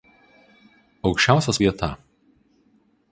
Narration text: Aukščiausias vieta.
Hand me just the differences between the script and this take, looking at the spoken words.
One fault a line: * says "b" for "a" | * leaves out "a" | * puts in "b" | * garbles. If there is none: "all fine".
all fine